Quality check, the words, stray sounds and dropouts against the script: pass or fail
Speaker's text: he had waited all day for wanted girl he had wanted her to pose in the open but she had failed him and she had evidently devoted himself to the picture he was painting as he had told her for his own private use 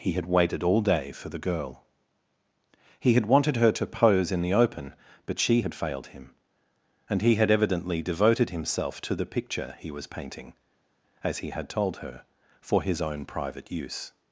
fail